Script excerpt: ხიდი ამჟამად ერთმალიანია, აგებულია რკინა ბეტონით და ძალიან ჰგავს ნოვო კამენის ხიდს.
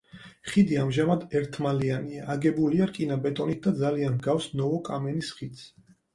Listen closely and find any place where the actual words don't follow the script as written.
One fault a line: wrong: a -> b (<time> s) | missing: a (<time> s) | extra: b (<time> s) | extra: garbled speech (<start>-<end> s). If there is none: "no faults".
no faults